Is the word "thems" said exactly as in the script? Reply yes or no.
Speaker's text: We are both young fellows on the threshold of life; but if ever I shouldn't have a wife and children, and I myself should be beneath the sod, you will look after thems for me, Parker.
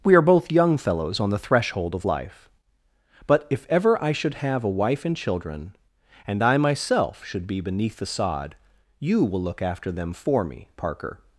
no